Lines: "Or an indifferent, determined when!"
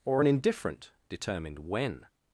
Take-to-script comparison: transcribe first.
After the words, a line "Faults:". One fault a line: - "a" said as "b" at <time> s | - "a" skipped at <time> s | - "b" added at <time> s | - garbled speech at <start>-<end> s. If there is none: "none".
"Or an indifferent, determined when!"
Faults:
none